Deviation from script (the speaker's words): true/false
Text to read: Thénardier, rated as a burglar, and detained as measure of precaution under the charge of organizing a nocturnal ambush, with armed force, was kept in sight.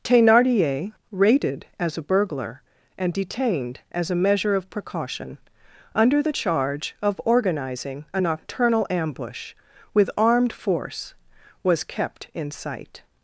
true